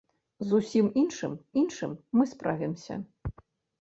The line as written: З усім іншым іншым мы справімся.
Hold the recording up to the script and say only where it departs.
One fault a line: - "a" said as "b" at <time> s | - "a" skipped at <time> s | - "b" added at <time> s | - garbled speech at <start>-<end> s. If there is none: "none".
none